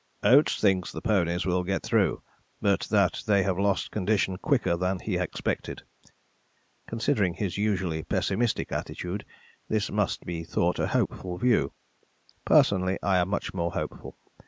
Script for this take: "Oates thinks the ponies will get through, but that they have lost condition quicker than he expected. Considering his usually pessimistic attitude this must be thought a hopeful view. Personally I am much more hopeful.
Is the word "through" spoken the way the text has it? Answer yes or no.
yes